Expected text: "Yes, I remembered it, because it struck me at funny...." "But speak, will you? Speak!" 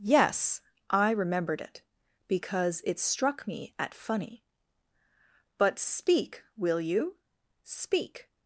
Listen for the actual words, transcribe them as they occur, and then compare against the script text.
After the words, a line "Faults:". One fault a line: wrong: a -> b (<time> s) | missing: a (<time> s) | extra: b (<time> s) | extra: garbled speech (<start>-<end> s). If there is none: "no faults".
"Yes, I remembered it, because it struck me at funny...." "But speak, will you? Speak!"
Faults:
no faults